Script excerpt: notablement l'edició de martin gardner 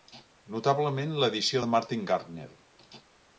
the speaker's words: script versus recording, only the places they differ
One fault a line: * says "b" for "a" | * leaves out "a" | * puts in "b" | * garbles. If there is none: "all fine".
all fine